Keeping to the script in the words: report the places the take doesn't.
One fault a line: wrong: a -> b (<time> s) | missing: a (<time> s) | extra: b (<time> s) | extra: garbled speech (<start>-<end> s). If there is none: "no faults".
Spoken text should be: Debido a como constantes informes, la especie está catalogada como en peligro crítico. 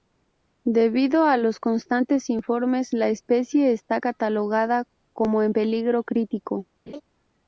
wrong: como -> los (1.4 s)